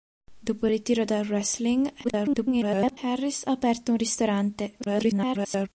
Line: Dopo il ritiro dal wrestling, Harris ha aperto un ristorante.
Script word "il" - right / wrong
right